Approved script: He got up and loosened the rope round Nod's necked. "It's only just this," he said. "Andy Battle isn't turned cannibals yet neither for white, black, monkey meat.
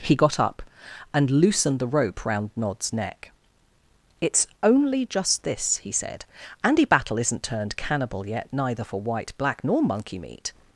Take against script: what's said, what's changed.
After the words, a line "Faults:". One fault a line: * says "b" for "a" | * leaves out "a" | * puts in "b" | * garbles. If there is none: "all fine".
He got up and loosened the rope round Nod's neck. "It's only just this," he said. "Andy Battle isn't turned cannibal yet neither for white, black, nor monkey meat.
Faults:
* says "neck" for "necked"
* says "cannibal" for "cannibals"
* puts in "nor"